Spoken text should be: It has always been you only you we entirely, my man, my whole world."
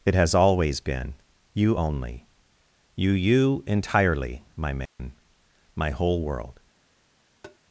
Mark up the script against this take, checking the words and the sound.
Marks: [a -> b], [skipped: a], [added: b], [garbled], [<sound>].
It has always been you only you [we -> you] entirely, my man, [dropout] my whole world." [tap]